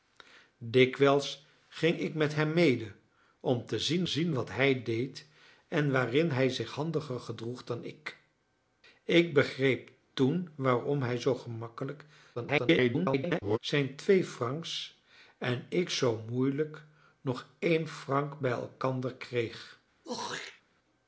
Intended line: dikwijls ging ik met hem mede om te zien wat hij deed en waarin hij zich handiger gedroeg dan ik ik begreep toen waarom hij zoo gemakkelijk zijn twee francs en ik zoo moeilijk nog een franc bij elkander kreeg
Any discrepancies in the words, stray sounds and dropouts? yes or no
yes